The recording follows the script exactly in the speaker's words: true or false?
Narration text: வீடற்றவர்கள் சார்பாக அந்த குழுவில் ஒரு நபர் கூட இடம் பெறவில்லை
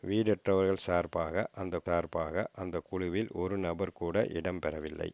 false